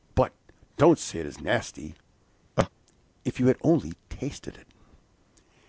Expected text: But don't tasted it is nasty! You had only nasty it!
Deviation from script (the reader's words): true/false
true